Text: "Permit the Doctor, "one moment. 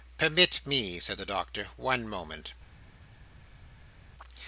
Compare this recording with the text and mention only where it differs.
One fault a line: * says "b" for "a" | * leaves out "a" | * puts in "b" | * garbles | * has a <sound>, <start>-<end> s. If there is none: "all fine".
* puts in "me said"